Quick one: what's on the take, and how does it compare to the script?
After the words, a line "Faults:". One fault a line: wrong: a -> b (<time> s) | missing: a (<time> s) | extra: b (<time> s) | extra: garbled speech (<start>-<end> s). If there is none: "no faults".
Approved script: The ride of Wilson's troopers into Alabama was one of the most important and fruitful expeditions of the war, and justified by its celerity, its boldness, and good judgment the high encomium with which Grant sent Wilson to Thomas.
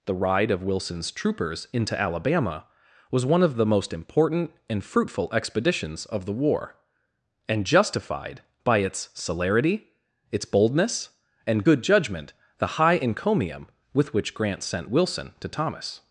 The ride of Wilson's troopers into Alabama was one of the most important and fruitful expeditions of the war, and justified by its celerity, its boldness, and good judgment the high encomium with which Grant sent Wilson to Thomas.
Faults:
no faults